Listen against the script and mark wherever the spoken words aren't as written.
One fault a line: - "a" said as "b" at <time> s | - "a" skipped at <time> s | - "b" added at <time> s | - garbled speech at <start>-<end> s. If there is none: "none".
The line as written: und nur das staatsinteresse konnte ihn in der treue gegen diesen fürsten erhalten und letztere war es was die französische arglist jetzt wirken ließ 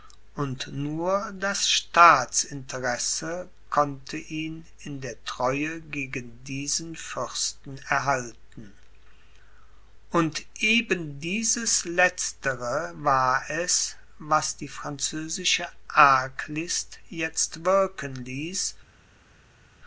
- "eben dieses" added at 10.6 s